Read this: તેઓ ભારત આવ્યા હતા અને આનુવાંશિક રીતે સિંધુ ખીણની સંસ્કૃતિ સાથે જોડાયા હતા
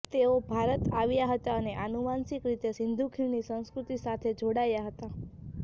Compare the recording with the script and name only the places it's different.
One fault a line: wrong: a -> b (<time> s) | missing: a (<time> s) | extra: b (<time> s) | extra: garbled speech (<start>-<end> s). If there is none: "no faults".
no faults